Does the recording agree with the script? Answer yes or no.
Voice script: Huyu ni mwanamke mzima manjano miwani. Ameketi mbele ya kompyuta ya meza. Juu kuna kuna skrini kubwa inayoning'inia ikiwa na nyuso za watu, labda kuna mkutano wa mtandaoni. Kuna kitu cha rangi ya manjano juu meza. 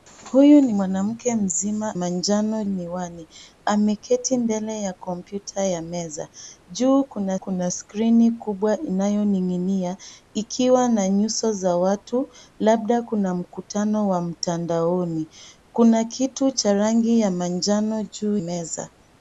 yes